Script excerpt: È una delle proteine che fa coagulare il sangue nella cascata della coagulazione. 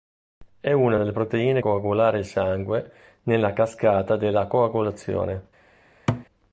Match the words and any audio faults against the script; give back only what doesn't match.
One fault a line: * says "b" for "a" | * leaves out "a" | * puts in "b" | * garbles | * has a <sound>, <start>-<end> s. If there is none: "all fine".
* leaves out "che fa"
* has a thud, 6.1-6.3 s